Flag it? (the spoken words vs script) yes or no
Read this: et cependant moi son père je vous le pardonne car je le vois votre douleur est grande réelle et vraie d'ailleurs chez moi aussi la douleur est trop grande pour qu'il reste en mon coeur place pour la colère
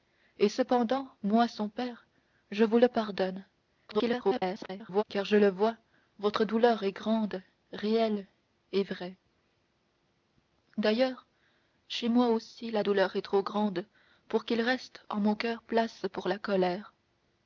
yes